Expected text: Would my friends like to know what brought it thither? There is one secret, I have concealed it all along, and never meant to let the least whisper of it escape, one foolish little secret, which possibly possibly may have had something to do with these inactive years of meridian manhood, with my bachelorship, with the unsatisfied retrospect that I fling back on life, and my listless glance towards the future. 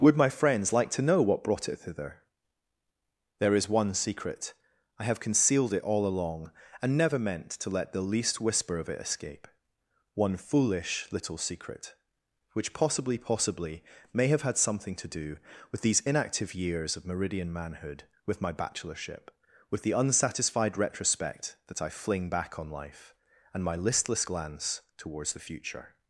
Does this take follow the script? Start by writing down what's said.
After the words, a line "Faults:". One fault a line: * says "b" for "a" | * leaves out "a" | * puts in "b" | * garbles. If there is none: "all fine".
Would my friends like to know what brought it thither? There is one secret, I have concealed it all along, and never meant to let the least whisper of it escape, one foolish little secret, which possibly possibly may have had something to do with these inactive years of meridian manhood, with my bachelorship, with the unsatisfied retrospect that I fling back on life, and my listless glance towards the future.
Faults:
all fine